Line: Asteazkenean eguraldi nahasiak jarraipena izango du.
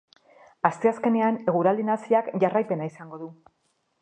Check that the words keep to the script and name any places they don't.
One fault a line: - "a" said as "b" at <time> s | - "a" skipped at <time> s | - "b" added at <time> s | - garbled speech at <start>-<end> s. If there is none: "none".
none